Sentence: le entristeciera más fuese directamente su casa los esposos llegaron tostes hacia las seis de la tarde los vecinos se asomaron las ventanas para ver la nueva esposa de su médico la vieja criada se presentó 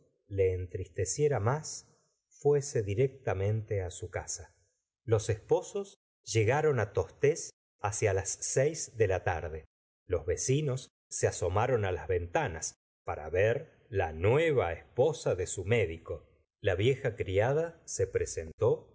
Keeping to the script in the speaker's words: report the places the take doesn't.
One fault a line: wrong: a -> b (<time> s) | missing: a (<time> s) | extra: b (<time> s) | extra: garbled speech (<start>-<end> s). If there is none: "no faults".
no faults